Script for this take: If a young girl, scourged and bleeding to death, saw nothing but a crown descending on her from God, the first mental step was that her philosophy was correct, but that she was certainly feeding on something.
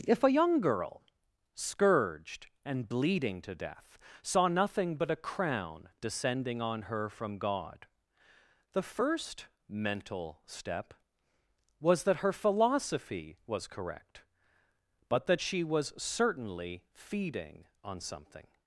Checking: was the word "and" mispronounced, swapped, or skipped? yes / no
no